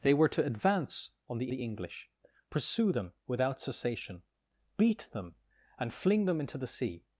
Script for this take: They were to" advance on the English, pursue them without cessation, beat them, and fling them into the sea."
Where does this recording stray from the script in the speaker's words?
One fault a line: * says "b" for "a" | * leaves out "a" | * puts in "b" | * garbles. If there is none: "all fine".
* puts in "the"